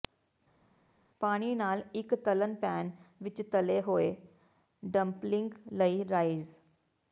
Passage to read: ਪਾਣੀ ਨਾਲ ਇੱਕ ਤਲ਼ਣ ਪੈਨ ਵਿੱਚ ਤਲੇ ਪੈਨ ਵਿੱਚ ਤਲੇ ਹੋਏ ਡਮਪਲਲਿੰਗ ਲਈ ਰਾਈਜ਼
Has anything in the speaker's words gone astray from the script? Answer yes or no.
yes